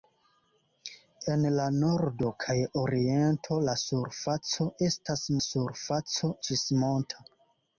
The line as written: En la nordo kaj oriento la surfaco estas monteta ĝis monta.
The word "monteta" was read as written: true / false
false